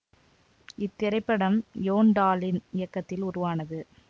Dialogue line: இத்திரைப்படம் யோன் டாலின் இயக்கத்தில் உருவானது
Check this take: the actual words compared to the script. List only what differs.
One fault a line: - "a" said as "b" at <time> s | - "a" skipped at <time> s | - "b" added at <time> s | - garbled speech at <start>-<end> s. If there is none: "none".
none